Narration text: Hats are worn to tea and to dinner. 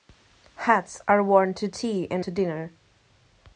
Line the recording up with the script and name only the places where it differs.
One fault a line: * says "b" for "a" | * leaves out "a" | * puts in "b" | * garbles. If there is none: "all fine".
all fine